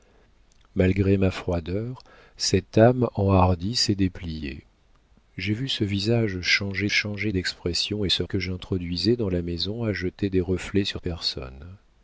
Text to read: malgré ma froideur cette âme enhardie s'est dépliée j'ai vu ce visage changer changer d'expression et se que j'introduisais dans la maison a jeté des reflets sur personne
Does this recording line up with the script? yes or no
yes